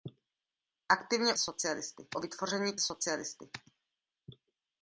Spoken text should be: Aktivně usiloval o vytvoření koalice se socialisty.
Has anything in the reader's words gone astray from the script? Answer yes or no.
yes